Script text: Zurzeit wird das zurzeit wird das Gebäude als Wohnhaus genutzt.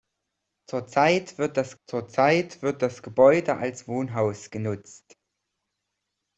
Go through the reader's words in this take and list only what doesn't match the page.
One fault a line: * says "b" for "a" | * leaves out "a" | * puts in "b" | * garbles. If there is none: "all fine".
all fine